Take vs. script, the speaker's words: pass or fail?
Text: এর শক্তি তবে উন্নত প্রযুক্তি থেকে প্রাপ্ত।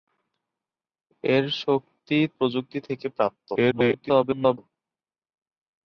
fail